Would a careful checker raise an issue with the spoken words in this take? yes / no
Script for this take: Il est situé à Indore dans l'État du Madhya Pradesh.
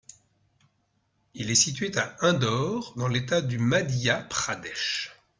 no